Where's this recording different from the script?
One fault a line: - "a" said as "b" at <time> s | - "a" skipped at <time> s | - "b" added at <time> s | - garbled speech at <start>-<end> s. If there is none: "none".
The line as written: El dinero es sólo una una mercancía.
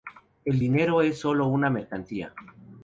- "una" skipped at 1.7 s